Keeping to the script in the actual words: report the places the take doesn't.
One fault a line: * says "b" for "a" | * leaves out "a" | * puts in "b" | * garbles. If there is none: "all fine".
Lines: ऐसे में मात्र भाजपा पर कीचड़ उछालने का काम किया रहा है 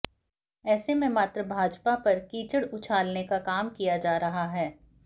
* puts in "जा"